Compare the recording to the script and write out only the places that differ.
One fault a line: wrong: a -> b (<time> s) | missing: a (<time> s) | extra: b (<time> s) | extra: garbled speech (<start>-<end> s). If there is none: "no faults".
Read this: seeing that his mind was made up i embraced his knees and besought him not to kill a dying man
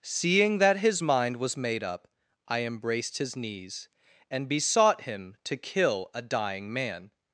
missing: not (5.4 s)